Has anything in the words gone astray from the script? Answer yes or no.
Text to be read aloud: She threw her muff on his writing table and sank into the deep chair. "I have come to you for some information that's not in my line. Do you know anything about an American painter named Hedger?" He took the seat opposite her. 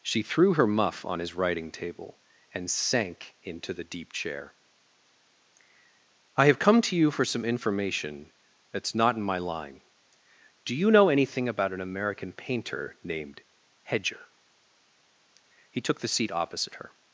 no